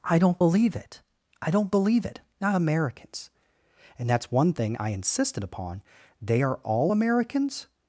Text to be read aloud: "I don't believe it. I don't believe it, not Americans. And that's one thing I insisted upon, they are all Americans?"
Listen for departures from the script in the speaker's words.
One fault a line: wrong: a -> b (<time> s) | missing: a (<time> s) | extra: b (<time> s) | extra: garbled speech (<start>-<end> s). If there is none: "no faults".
no faults